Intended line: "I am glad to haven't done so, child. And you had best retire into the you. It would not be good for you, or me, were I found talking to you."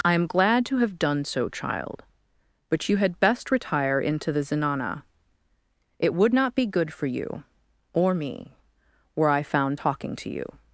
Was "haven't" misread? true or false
true